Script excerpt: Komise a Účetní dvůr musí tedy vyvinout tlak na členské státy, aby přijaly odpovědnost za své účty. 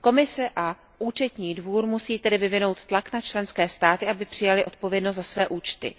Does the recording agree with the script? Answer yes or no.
yes